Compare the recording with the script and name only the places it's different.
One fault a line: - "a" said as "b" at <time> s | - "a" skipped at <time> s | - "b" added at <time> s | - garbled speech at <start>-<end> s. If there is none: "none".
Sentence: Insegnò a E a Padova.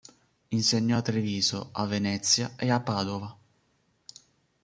- "Treviso a Venezia" added at 1.0 s